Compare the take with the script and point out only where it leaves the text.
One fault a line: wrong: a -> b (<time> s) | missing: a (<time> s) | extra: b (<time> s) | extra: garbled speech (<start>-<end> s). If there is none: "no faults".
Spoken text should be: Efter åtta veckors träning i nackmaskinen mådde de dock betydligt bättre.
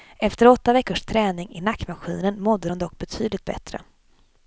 no faults